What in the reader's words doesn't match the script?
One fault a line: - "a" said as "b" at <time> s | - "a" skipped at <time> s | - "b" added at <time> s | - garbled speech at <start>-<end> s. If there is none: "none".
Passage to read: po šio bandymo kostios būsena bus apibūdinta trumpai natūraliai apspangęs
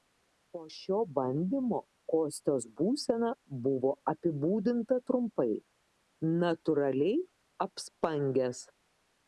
- "bus" said as "buvo" at 3.7 s